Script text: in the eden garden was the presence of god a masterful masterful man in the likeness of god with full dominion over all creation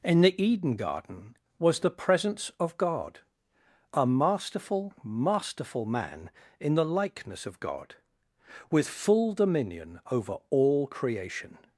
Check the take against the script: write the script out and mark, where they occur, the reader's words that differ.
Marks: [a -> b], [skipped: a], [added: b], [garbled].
in the eden garden was the presence of god a masterful masterful man in the likeness of god with full dominion over all creation